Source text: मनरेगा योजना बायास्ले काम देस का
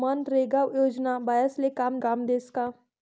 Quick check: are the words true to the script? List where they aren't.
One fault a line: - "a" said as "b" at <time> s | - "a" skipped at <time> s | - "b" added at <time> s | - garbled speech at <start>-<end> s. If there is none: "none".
- "काम" added at 2.1 s